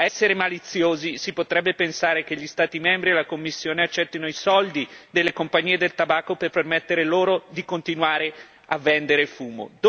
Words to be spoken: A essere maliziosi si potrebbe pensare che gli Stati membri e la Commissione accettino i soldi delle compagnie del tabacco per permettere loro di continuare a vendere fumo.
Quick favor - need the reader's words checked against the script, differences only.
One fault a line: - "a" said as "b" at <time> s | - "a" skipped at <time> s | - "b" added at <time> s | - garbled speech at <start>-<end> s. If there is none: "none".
none